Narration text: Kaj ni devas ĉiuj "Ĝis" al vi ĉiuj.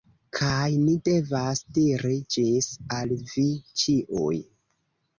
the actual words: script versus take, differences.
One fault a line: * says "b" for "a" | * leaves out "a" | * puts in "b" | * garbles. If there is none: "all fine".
* says "diri" for "ĉiuj"